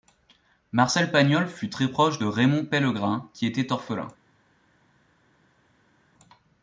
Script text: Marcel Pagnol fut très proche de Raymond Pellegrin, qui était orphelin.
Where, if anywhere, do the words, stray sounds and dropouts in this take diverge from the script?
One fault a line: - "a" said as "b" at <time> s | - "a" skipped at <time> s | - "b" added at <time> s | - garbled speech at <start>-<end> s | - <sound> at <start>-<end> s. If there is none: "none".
none